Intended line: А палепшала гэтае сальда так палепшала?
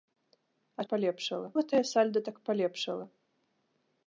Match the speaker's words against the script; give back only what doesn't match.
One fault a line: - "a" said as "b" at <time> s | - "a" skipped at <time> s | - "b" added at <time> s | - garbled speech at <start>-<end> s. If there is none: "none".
none